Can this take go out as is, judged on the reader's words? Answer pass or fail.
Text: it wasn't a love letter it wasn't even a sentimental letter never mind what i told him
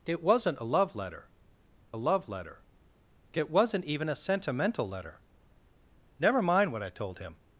fail